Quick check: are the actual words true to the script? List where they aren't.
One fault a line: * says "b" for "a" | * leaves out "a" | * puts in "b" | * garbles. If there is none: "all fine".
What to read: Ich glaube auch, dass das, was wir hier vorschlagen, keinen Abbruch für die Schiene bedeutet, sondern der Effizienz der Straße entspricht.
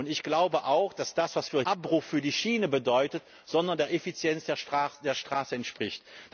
* leaves out "hier vorschlagen keinen"